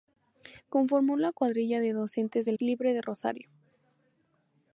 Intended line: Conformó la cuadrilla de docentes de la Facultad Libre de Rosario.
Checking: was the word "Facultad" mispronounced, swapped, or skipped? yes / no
yes